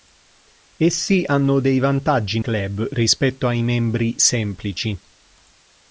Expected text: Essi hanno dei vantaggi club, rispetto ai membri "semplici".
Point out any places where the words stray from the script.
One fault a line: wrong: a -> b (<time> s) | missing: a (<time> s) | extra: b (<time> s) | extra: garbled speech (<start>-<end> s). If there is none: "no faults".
no faults